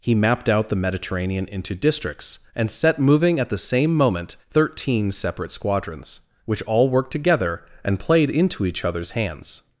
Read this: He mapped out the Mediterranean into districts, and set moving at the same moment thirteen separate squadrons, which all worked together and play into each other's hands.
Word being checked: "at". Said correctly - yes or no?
yes